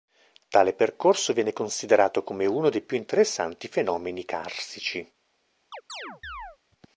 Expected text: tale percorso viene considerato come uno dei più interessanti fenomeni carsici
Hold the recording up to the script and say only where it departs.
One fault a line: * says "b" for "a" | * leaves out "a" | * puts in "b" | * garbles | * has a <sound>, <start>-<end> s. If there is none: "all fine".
* has a chirp, 5.7-6.6 s